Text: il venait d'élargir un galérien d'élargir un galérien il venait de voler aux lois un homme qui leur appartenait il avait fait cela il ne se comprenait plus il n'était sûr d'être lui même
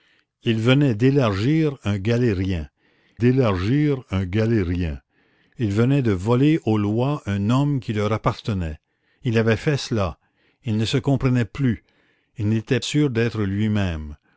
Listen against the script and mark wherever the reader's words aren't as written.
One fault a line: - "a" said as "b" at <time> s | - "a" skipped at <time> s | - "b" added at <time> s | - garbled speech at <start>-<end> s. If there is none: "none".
none